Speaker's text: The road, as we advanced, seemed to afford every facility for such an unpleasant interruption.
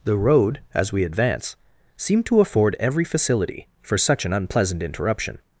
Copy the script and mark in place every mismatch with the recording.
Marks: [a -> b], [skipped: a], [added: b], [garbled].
The road, as we [advanced, -> advance] seemed to afford every facility for such an unpleasant interruption.